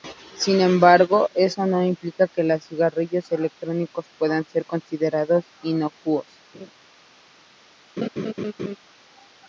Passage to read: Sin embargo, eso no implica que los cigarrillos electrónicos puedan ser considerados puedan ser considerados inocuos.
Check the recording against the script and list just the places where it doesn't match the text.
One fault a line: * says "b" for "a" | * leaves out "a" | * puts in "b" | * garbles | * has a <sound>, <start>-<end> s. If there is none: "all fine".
* leaves out "puedan ser considerados"
* has a laugh, 6.5-6.7 s
* has a laugh, 8.0-8.8 s